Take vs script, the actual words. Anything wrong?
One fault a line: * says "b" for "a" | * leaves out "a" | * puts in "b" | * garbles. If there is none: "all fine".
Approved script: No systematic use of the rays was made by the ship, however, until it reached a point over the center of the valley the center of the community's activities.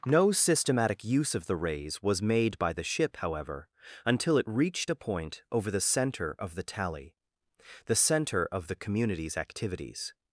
* says "tally" for "valley"